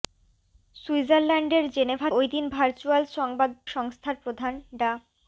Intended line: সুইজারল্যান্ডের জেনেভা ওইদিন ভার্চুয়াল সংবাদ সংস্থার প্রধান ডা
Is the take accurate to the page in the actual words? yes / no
yes